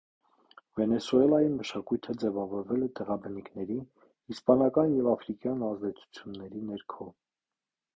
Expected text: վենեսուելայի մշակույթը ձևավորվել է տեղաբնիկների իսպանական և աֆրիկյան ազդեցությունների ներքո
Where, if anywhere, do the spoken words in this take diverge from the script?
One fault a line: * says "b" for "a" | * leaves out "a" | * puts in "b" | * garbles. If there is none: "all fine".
all fine